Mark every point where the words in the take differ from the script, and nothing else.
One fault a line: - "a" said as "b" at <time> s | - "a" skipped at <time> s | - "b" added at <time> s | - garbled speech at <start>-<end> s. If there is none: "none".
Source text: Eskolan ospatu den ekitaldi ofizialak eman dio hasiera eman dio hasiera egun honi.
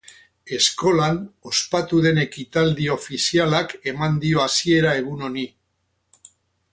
- "eman dio hasiera" skipped at 5.0 s